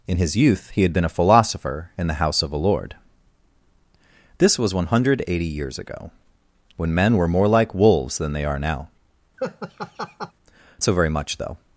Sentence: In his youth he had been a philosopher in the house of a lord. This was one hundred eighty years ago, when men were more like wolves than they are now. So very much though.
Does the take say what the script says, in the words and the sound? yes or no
no